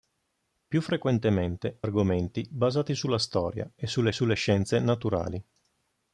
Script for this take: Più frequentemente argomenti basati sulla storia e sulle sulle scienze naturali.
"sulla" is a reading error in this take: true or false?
false